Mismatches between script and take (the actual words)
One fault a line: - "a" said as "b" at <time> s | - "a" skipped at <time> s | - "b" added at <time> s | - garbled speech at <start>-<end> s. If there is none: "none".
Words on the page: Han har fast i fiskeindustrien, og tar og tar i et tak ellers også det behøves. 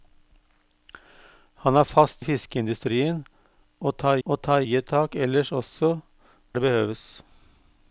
none